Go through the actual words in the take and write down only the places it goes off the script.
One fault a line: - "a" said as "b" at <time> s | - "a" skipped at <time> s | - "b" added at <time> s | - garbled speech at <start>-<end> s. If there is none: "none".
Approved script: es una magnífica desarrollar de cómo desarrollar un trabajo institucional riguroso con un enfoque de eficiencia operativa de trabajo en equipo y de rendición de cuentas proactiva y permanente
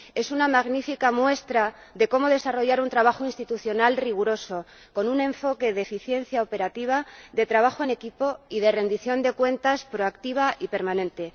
- "desarrollar" said as "muestra" at 1.1 s